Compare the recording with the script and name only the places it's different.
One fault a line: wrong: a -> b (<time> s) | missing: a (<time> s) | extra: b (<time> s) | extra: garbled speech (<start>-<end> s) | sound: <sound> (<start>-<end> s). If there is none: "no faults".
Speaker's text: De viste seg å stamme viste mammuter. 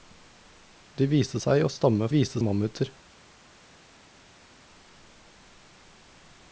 no faults